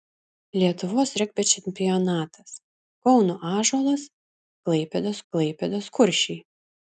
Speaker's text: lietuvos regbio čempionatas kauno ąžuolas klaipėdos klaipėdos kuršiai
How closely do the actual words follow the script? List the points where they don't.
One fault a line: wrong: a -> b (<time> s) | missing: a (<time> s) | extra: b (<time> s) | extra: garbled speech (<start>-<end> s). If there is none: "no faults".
no faults